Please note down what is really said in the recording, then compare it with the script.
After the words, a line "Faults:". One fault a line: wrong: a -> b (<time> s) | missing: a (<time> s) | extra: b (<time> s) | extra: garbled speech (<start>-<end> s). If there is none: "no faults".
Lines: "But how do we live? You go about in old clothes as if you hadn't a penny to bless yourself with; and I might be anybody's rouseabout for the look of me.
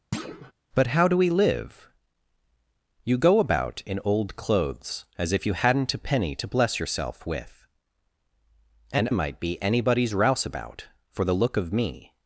"But how do we live? You go about in old clothes as if you hadn't a penny to bless yourself with; and might be anybody's rouseabout for the look of me.
Faults:
missing: I (9.1 s)